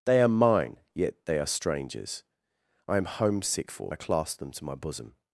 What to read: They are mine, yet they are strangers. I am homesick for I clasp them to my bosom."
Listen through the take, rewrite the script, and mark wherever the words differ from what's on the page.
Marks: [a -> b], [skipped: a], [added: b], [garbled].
They are mine, yet they are strangers. I am homesick for I clasp them to my bosom."